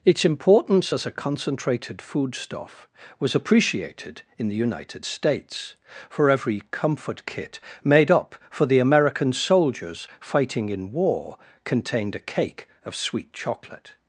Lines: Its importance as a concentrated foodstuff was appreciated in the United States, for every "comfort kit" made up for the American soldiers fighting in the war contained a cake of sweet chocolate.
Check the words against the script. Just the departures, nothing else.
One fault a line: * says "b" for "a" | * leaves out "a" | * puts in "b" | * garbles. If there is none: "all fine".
* leaves out "the"